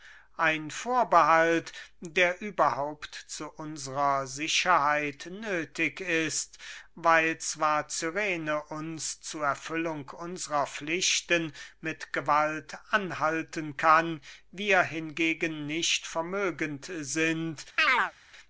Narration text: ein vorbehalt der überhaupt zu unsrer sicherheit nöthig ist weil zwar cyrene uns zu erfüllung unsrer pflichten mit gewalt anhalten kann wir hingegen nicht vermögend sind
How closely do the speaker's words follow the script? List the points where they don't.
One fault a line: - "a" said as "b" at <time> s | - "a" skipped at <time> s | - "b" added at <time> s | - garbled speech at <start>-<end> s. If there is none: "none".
none